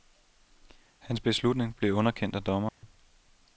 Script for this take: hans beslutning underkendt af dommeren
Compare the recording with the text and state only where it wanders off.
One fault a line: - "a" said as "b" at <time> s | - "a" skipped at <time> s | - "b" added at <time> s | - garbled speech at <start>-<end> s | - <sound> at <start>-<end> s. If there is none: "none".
- "blev" added at 1.8 s
- dropout at 2.7-2.8 s